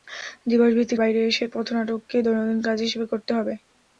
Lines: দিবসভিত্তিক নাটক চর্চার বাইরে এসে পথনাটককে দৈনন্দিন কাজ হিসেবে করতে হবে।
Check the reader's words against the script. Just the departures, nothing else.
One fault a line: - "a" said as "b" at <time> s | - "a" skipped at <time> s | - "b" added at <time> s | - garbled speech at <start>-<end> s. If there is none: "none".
- "নাটক চর্চার" skipped at 1.0 s